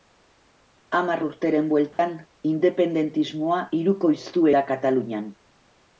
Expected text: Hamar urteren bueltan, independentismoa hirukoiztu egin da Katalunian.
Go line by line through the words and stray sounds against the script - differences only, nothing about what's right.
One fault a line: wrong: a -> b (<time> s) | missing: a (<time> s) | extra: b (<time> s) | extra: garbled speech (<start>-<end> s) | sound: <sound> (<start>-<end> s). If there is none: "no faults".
sound: dropout (1.9-2.0 s)
missing: egin (4.5 s)